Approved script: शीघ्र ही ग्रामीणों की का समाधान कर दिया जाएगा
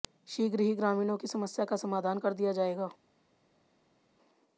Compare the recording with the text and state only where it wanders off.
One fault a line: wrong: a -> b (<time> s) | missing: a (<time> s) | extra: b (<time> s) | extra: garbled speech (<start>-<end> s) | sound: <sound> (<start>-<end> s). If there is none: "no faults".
extra: समस्या (1.3 s)